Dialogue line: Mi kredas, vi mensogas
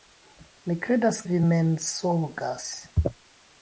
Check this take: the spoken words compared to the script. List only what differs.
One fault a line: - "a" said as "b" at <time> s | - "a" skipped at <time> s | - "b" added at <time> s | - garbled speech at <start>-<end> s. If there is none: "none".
none